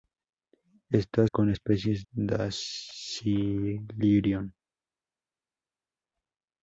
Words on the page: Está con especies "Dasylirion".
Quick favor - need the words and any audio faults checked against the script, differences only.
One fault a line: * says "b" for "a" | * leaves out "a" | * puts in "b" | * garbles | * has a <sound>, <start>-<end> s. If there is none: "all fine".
all fine